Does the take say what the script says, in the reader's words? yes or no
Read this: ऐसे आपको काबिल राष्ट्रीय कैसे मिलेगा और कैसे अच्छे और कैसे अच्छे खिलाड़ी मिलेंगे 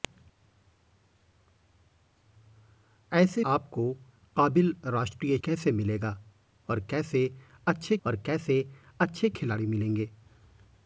yes